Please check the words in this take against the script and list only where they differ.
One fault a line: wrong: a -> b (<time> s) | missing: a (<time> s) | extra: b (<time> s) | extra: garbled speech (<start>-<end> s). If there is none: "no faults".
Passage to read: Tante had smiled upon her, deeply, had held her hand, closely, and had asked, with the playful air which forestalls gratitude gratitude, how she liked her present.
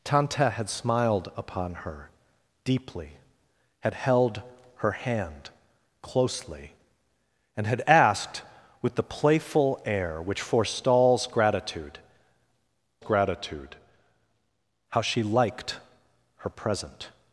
no faults